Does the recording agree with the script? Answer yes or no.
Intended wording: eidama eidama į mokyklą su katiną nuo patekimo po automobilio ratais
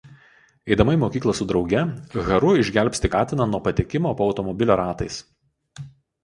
no